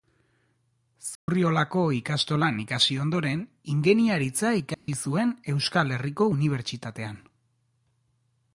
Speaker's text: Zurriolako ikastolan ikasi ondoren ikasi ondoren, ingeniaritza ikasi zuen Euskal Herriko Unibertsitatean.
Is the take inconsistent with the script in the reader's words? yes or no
yes